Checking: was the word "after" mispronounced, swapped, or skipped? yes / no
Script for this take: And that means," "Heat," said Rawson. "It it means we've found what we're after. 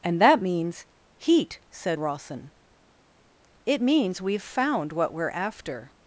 no